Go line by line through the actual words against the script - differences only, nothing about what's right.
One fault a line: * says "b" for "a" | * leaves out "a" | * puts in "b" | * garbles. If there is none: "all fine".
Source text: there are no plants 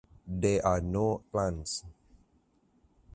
all fine